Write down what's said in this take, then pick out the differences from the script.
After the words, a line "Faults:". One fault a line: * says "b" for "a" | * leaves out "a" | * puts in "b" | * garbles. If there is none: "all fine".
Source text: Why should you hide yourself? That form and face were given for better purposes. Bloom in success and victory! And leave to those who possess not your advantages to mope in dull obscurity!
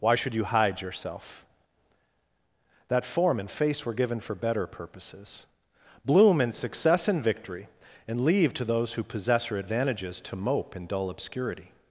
Why should you hide yourself? That form and face were given for better purposes. Bloom in success and victory! And leave to those who possess your advantages to mope in dull obscurity!
Faults:
* leaves out "not"